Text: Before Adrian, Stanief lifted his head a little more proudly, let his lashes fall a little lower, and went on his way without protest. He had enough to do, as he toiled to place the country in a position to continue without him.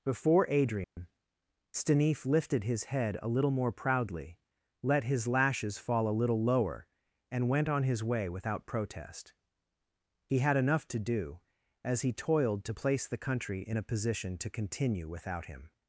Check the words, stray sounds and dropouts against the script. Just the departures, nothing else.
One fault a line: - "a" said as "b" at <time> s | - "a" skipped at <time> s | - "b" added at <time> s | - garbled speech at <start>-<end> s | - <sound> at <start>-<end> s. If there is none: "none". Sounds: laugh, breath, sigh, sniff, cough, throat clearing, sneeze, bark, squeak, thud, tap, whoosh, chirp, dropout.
- dropout at 0.8-1.0 s